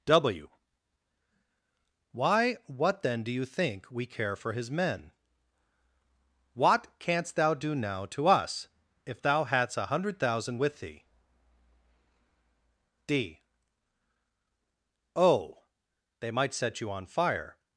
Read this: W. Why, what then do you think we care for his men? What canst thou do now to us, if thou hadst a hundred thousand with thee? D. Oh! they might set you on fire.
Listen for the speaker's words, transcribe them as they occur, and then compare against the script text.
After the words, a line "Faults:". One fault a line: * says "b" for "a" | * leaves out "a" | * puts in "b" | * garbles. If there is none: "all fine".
W. Why, what then do you think we care for his men? What canst thou do now to us, if thou hadst a hundred thousand with thee? D. Oh! they might set you on fire.
Faults:
all fine